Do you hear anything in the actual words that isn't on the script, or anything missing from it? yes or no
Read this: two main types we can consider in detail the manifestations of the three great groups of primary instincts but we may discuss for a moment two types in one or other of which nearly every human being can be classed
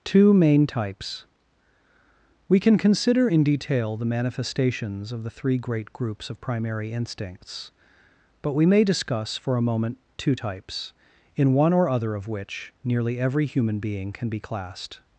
no